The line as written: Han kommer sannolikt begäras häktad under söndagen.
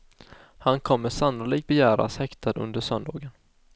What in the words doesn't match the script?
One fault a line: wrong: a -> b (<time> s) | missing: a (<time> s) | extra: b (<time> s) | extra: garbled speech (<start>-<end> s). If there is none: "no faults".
no faults